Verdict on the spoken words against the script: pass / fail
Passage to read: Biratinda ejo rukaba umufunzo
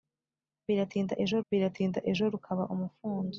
fail